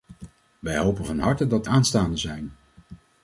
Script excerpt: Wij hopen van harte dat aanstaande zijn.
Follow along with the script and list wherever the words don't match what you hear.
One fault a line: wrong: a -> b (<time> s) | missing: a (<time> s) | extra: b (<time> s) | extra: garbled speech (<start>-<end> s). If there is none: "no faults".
no faults